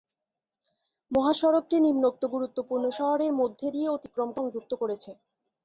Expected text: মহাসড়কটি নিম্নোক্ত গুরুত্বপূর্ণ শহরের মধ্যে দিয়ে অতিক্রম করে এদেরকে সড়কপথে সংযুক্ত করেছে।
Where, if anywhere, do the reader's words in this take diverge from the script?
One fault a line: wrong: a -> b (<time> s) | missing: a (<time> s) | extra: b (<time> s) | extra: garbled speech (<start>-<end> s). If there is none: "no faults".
missing: করে এদেরকে সড়কপথে (4.3 s)